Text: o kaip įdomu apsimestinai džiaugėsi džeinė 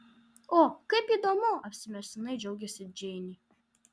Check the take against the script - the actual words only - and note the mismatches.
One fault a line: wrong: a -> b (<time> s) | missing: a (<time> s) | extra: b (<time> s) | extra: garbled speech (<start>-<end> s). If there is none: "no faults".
no faults